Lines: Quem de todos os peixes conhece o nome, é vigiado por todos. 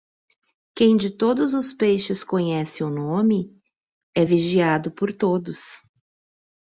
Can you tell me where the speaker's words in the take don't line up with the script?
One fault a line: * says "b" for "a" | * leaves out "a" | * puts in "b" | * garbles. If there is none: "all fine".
all fine